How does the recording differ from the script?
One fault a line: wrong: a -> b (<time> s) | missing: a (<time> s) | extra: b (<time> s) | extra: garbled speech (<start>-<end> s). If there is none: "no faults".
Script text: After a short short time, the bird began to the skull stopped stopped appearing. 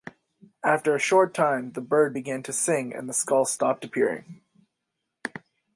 missing: short (1.3 s)
extra: sing and (2.5 s)
missing: stopped (3.8 s)